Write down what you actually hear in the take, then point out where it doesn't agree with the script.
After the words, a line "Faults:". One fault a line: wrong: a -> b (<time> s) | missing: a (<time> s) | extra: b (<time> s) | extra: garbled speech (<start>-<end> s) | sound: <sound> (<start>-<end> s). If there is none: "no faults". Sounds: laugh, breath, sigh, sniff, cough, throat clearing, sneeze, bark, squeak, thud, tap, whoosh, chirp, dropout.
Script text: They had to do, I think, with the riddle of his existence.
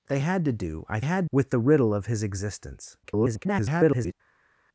They had to do, I had, with the riddle of his existence. [garbled]
Faults:
wrong: think -> had (1.0 s)
extra: garbled speech (3.0-4.1 s)